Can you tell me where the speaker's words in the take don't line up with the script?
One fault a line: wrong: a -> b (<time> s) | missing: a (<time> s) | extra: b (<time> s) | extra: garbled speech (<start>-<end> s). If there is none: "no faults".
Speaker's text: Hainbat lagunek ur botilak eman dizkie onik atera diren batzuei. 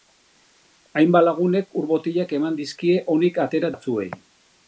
missing: diren (3.7 s)